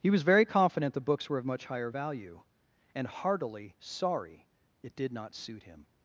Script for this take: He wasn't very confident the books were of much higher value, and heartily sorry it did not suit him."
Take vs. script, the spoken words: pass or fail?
fail